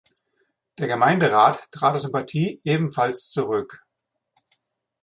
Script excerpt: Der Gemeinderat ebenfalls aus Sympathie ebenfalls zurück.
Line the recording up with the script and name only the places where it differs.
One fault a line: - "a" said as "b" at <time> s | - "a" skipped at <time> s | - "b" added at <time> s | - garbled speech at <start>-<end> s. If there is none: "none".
- "ebenfalls" said as "trat" at 1.7 s